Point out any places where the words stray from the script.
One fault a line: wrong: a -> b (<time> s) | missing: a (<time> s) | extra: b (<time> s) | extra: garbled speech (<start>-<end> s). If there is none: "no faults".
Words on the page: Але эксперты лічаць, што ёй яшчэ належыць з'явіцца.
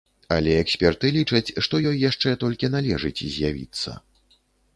extra: толькі (2.4 s)